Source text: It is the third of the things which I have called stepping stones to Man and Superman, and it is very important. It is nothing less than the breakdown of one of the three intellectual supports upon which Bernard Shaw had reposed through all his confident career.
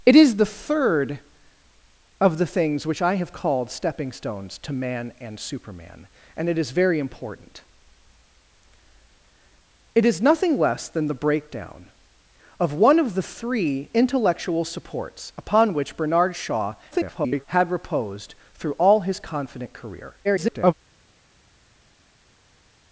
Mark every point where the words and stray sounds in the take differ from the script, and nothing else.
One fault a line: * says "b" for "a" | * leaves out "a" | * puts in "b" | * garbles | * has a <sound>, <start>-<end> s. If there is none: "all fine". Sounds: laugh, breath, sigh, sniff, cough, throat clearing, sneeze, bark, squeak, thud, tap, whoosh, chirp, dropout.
* garbles
* garbles